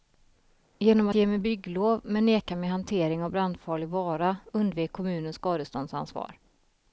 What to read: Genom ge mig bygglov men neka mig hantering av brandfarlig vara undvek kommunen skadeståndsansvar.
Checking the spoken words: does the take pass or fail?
pass